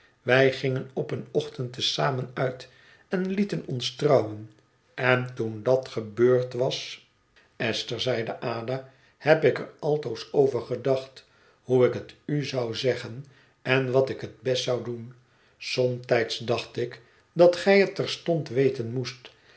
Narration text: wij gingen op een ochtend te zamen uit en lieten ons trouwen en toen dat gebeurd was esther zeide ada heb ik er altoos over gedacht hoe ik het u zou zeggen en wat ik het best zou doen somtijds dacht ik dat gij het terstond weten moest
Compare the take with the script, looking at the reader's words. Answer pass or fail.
pass